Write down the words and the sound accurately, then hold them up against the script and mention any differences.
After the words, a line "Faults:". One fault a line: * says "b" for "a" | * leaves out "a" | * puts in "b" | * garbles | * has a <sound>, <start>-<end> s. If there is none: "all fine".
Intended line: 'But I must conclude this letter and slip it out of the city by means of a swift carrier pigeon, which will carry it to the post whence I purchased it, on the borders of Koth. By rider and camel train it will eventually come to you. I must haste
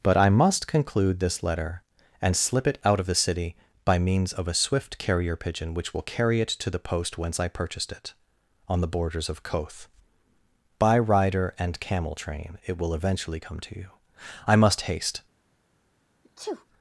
'But I must conclude this letter and slip it out of the city by means of a swift carrier pigeon, which will carry it to the post whence I purchased it, on the borders of Koth. By rider and camel train it will eventually come to you. I must haste
Faults:
* has a sneeze, 16.2-16.7 s